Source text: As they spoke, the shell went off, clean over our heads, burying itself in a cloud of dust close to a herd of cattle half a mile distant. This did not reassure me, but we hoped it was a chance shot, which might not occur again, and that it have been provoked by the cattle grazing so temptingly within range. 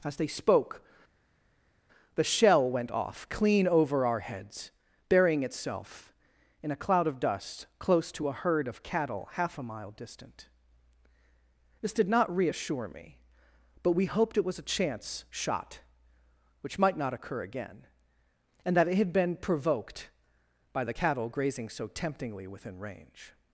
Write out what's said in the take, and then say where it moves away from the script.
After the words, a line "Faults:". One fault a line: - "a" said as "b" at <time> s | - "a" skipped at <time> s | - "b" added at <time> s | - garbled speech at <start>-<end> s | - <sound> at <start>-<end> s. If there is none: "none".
As they spoke, the shell went off, clean over our heads, burying itself in a cloud of dust close to a herd of cattle half a mile distant. This did not reassure me, but we hoped it was a chance shot, which might not occur again, and that it had been provoked by the cattle grazing so temptingly within range.
Faults:
- "have" said as "had" at 18.9 s